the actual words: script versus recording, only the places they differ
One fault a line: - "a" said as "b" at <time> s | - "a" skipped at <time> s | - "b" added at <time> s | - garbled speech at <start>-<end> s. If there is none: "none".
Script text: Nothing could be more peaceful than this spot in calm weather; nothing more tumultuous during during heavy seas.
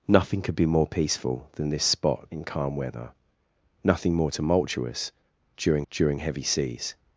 none